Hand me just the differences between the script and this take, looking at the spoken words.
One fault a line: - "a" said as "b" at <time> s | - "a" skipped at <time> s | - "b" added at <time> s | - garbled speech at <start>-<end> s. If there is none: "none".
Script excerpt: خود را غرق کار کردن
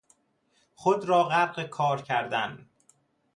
none